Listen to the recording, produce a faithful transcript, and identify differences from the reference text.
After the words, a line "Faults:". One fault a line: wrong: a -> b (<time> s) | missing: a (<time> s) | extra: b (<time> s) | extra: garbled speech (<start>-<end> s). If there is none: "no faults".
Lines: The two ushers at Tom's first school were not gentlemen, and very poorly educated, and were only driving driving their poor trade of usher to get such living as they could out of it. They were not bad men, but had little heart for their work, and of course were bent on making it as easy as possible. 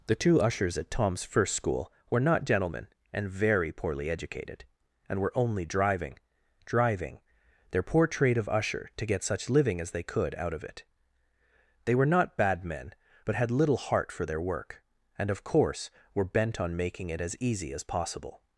The two ushers at Tom's first school were not gentlemen, and very poorly educated, and were only driving driving their poor trade of usher to get such living as they could out of it. They were not bad men, but had little heart for their work, and of course were bent on making it as easy as possible.
Faults:
no faults